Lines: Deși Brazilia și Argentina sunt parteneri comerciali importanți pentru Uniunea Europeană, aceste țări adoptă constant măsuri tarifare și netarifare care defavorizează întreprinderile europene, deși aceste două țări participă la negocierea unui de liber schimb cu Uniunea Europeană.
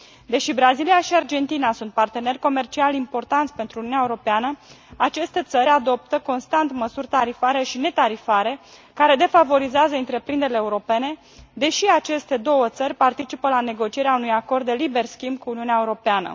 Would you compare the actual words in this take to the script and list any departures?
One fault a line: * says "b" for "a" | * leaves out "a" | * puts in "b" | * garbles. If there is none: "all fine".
* puts in "acord"